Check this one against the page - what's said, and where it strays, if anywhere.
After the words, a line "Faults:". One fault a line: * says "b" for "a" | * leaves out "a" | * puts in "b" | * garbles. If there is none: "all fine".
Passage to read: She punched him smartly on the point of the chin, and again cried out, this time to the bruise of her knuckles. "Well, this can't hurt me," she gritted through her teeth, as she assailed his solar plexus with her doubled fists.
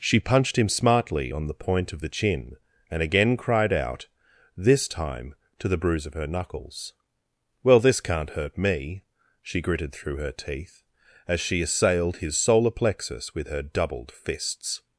She punched him smartly on the point of the chin, and again cried out, this time to the bruise of her knuckles. "Well, this can't hurt me," she gritted through her teeth, as she assailed his solar plexus with her doubled fists.
Faults:
all fine